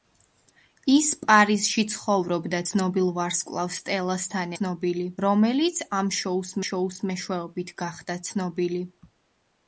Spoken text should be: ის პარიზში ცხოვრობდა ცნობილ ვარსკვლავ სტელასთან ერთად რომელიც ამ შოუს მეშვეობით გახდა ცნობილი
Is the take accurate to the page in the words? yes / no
no